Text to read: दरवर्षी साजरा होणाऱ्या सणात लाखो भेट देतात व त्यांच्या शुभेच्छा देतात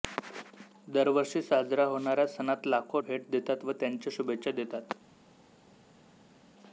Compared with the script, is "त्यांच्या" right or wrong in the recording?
right